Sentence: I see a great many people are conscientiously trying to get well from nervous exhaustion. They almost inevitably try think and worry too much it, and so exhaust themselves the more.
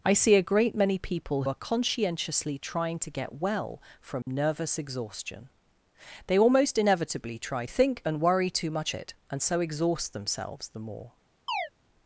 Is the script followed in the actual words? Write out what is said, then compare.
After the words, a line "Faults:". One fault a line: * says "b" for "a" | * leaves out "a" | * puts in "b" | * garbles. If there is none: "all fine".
I see a great many people are conscientiously trying to get well from nervous exhaustion. They almost inevitably try think and worry too much it, and so exhaust themselves the more.
Faults:
all fine